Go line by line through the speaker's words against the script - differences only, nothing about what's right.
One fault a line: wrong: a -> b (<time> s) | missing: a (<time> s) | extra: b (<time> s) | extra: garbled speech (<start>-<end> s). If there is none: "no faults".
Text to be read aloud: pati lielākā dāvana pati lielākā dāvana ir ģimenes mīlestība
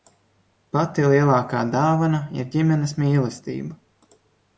missing: pati lielākā dāvana (2.2 s)